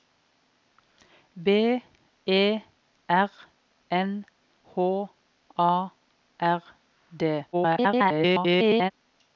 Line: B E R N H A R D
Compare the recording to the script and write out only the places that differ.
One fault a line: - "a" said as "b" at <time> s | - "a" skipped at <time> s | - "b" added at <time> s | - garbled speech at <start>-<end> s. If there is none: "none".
- garbled speech at 7.5-8.9 s